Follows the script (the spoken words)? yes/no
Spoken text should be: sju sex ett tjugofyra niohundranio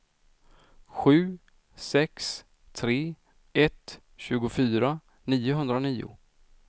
no